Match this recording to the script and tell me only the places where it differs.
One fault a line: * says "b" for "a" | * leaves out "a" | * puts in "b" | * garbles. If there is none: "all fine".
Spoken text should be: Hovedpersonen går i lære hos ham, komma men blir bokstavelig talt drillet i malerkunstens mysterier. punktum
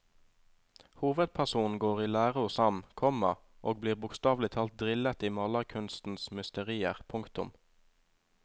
* says "og" for "men"